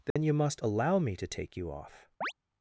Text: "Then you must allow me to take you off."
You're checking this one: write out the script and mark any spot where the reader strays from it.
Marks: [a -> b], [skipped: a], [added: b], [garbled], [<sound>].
"Then [dropout] you must allow me to take you off." [chirp]